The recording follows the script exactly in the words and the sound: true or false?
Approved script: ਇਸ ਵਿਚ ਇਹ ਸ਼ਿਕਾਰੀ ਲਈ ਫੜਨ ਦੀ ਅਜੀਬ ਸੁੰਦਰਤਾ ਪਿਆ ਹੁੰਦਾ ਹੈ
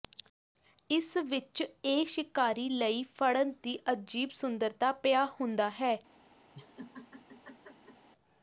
false